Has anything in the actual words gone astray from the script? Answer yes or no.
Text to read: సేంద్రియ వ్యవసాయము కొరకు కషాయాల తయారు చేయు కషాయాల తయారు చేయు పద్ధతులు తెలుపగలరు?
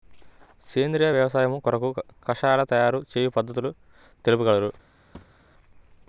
yes